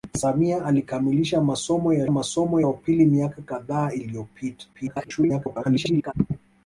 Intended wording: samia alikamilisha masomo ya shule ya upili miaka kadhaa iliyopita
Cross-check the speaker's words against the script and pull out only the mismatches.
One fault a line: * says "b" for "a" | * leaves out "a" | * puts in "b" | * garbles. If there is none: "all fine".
* says "masomo" for "shule"
* garbles